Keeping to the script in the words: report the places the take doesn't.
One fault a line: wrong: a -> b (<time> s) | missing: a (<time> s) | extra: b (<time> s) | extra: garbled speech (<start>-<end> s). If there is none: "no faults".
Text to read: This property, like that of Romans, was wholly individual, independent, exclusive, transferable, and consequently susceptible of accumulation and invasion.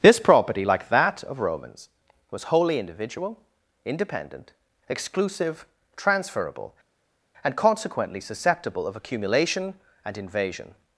no faults